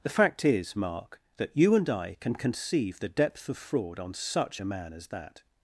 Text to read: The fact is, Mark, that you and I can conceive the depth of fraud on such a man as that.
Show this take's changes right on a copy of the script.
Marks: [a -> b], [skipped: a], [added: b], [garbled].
The fact is, Mark, that you and I can conceive the depth of fraud on such a man as that.